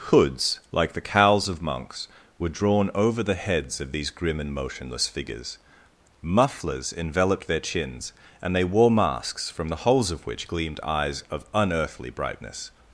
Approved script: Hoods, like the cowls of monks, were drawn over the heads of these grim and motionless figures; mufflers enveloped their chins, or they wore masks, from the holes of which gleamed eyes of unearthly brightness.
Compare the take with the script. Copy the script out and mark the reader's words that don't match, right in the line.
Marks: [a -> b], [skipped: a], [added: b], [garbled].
Hoods, like the cowls of monks, were drawn over the heads of these grim and motionless figures; mufflers enveloped their chins, [or -> and] they wore masks, from the holes of which gleamed eyes of unearthly brightness.